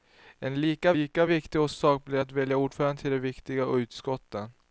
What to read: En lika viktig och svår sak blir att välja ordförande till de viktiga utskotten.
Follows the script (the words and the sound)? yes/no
no